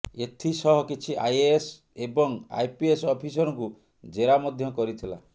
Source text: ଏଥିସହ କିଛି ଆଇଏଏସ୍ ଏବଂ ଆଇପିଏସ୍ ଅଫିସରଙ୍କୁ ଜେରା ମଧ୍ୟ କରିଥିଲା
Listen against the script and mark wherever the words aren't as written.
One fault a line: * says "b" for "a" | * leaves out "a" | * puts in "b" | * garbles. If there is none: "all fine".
all fine